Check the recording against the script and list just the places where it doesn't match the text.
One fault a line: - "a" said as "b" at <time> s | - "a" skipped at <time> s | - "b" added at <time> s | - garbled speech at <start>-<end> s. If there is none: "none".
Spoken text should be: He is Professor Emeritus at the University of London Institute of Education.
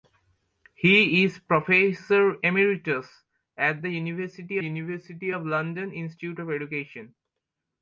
- "University" added at 4.6 s